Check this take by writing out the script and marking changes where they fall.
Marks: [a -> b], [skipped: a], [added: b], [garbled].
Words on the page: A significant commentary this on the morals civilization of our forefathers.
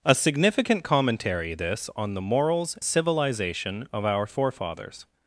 A significant commentary this on the morals civilization of our forefathers.